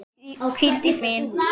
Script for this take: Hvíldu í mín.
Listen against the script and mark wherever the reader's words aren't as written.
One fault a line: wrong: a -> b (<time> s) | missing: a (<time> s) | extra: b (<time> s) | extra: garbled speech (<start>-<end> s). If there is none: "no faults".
no faults